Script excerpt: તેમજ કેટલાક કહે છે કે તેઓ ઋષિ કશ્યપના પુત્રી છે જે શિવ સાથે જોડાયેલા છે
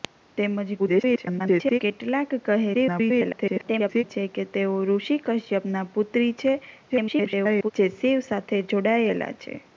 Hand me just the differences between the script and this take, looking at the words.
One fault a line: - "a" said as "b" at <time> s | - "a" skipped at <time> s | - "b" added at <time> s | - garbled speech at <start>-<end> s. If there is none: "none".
- garbled speech at 0.8-1.8 s
- garbled speech at 2.7-4.0 s
- garbled speech at 6.9-7.7 s